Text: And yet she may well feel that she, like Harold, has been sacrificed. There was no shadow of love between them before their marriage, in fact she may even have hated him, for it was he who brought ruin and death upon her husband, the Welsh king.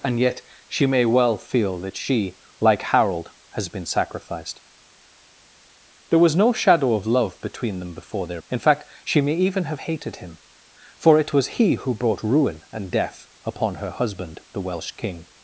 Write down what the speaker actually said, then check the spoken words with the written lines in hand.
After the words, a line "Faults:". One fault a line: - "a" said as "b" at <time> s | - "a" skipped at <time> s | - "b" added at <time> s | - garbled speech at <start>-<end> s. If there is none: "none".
And yet she may well feel that she, like Harold, has been sacrificed. There was no shadow of love between them before their in fact she may even have hated him, for it was he who brought ruin and death upon her husband, the Welsh king.
Faults:
- "marriage" skipped at 8.4 s